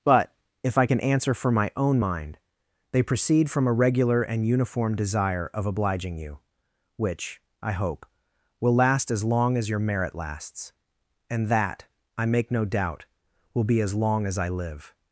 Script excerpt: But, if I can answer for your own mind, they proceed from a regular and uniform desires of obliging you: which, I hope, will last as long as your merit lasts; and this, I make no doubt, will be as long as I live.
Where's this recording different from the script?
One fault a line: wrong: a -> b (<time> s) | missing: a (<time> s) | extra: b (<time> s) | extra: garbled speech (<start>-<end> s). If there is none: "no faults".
wrong: your -> my (1.5 s)
wrong: desires -> desire (5.0 s)
wrong: this -> that (11.5 s)